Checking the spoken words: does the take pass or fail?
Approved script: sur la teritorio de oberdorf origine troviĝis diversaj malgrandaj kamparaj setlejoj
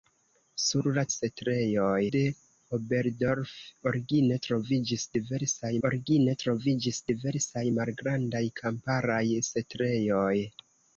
fail